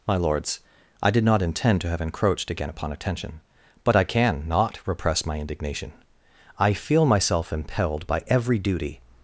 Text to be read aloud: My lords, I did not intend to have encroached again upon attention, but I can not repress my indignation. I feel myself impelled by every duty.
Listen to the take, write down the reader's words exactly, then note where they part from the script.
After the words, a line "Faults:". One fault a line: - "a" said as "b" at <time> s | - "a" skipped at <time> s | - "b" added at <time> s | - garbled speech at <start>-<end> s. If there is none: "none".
My lords, I did not intend to have encroached again upon attention, but I can not repress my indignation. I feel myself impelled by every duty.
Faults:
none